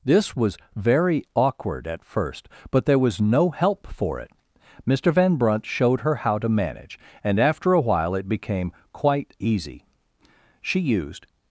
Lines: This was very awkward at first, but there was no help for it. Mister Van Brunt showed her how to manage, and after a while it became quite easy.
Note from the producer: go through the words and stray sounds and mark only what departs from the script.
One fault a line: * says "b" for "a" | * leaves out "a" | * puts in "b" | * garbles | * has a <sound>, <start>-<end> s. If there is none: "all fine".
* puts in "She used"